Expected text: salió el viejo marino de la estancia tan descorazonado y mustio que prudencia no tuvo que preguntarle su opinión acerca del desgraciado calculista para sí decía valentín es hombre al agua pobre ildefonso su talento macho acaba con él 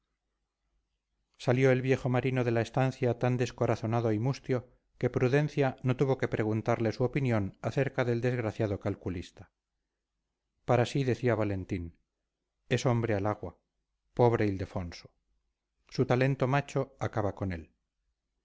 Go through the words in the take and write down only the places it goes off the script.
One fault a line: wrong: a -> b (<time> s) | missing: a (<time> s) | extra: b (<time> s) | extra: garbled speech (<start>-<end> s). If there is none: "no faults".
no faults